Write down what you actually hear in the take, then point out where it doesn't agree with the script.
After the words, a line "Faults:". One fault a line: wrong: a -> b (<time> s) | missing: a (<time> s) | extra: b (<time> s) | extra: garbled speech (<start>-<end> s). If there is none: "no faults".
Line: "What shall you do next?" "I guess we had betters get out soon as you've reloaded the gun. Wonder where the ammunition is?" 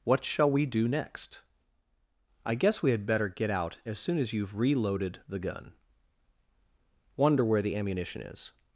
"What shall we do next?" "I guess we had better get out as soon as you've reloaded the gun. Wonder where the ammunition is?"
Faults:
wrong: you -> we (0.5 s)
wrong: betters -> better (3.0 s)
extra: as (3.9 s)